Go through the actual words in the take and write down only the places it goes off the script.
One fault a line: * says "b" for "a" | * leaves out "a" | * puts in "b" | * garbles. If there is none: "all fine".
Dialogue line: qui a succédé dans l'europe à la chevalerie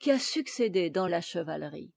* leaves out "l'europe à"